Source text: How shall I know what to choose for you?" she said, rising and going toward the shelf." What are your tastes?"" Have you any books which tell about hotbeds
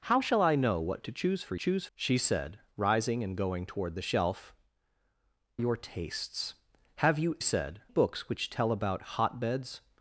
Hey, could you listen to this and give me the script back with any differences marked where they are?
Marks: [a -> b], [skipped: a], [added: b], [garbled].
How shall I know what to choose for [you?" -> choose] she said, rising and going toward the shelf." [skipped: What are] your tastes?"" Have you [any -> said] books which tell about hotbeds